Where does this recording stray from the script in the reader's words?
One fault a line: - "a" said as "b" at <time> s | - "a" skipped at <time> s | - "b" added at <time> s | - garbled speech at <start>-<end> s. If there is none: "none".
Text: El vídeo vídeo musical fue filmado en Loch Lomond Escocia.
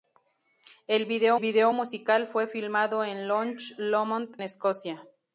none